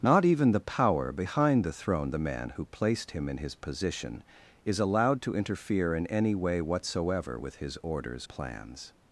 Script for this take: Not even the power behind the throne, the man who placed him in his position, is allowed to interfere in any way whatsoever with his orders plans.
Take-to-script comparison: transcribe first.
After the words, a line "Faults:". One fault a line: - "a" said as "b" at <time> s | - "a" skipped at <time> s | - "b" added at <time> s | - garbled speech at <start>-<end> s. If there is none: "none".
Not even the power behind the throne, the man who placed him in his position, is allowed to interfere in any way whatsoever with his orders plans.
Faults:
none